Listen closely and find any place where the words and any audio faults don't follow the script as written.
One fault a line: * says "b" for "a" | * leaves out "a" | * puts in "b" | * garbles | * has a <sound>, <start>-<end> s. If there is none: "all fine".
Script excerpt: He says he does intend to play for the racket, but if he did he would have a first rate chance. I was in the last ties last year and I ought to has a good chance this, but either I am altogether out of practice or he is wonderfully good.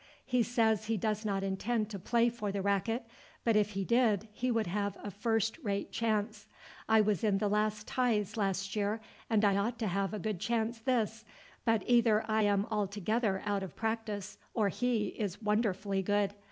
* puts in "not"
* says "have" for "has"